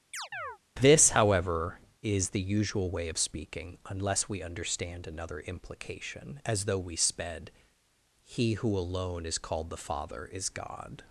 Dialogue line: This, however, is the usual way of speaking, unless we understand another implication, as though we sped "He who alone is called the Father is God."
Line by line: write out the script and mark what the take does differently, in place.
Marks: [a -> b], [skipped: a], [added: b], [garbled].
This, however, is the usual way of speaking, unless we understand another implication, as though we sped "He who alone is called the Father is God."